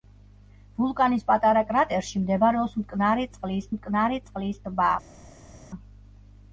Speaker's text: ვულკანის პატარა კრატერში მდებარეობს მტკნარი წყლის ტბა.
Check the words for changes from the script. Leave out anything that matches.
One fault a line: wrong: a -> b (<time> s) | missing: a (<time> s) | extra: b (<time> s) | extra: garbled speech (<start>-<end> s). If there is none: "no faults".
extra: მტკნარი წყლის (3.8 s)